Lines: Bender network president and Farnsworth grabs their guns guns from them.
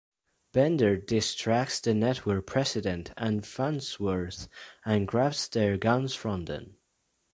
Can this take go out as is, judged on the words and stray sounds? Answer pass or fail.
fail